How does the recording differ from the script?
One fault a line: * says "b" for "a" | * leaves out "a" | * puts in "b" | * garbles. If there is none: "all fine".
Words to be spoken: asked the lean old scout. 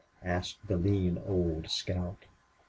all fine